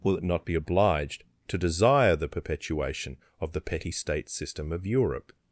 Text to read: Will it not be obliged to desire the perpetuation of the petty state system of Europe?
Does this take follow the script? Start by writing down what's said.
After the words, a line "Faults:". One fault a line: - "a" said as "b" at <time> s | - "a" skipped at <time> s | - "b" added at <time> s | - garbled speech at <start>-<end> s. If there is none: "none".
Will it not be obliged to desire the perpetuation of the petty state system of Europe?
Faults:
none